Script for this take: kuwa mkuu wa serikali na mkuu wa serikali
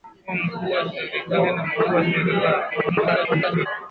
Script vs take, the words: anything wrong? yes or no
yes